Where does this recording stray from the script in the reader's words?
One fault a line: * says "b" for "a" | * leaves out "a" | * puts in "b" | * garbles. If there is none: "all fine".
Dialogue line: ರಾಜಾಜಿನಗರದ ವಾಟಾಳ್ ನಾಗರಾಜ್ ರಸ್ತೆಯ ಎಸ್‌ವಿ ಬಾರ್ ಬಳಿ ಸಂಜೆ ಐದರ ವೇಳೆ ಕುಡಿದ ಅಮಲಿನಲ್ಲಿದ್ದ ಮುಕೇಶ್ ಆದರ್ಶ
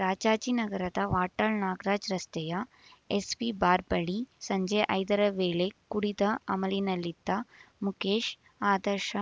all fine